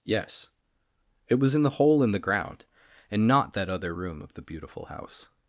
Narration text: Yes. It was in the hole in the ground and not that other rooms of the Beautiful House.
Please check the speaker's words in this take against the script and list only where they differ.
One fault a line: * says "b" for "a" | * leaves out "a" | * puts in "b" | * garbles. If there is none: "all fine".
* says "room" for "rooms"